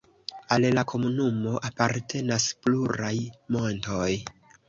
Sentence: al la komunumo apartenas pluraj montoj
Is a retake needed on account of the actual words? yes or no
no